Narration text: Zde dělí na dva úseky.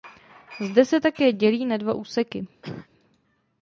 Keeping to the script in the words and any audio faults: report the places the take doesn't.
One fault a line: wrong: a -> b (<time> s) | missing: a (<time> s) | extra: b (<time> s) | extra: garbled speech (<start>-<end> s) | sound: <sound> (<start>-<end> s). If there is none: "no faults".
extra: se také (0.8 s)
sound: cough (2.6-2.9 s)